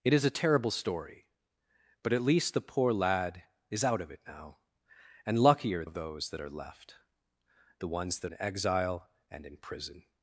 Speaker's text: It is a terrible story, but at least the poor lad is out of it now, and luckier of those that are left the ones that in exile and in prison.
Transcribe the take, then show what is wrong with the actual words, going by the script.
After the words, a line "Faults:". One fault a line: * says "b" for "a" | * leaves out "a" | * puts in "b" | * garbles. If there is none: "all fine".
It is a terrible story, but at least the poor lad is out of it now, and luckier of those that are left the ones that in exile and in prison.
Faults:
all fine